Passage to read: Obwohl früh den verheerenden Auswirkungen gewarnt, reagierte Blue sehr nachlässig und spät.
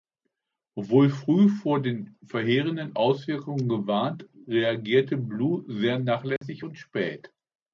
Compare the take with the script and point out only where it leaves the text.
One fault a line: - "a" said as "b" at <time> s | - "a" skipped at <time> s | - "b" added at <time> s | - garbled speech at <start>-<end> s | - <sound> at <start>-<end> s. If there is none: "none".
- "vor" added at 1.5 s
- dropout at 6.4-6.4 s